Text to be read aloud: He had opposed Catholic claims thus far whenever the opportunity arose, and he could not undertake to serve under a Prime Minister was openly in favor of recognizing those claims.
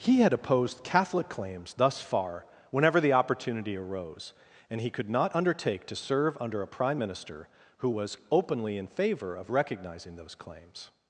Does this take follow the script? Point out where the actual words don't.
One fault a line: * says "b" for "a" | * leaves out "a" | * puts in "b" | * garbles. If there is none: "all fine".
* puts in "who"